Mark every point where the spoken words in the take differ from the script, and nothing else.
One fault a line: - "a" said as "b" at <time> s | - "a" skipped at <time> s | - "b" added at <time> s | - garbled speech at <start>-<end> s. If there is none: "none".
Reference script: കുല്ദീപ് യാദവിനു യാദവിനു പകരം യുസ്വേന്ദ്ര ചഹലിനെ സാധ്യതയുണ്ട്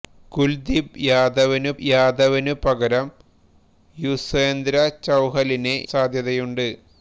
none